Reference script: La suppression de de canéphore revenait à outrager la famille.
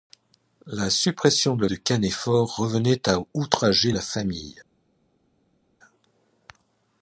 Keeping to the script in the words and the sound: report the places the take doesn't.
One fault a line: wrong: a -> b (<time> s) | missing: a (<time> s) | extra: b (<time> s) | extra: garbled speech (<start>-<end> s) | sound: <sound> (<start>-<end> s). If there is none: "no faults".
no faults